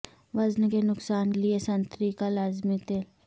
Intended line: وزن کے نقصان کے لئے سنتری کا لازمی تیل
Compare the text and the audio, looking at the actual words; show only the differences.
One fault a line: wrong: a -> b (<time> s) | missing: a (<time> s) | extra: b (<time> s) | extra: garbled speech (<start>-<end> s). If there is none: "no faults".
missing: کے (1.3 s)